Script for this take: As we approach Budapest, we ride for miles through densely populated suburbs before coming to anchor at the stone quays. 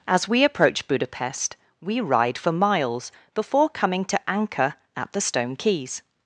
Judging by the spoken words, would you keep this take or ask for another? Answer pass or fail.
fail